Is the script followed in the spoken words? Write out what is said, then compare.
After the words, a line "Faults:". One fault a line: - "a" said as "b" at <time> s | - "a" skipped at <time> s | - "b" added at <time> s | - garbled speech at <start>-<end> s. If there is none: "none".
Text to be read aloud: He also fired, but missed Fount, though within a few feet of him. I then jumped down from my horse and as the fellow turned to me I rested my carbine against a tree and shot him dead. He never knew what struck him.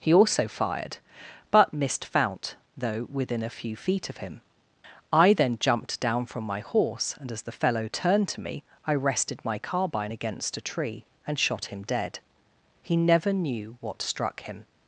He also fired, but missed Fount, though within a few feet of him. I then jumped down from my horse and as the fellow turned to me I rested my carbine against a tree and shot him dead. He never knew what struck him.
Faults:
none